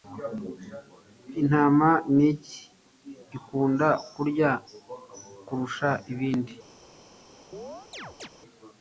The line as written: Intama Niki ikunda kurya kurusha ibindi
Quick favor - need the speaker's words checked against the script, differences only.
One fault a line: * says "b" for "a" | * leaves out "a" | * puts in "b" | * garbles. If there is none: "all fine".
all fine